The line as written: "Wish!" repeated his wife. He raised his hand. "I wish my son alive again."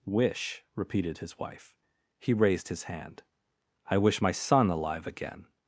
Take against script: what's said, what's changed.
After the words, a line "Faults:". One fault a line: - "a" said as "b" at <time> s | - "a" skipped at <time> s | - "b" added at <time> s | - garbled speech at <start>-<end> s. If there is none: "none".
"Wish!" repeated his wife. He raised his hand. "I wish my son alive again."
Faults:
none